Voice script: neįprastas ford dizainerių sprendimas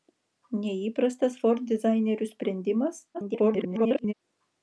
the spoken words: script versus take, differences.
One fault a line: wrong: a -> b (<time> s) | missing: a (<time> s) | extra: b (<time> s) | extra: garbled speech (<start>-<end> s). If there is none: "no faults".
extra: garbled speech (3.1-4.1 s)